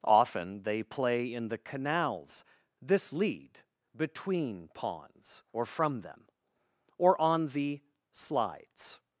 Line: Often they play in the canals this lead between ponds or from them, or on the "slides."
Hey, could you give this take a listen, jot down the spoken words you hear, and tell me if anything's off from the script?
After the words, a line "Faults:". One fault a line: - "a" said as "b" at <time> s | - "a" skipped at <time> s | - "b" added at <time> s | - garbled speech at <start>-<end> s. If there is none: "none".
Often they play in the canals this lead between ponds or from them, or on the "slides."
Faults:
none